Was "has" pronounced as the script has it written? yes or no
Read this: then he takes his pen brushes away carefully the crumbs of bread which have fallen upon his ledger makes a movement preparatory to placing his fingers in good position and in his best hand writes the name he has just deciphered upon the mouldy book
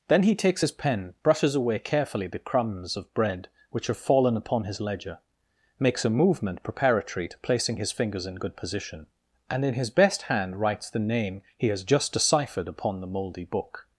yes